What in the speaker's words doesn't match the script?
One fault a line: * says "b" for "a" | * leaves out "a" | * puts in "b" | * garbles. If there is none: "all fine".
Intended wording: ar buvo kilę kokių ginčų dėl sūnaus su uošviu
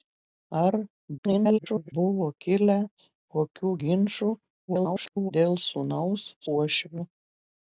* garbles
* garbles
* leaves out "su"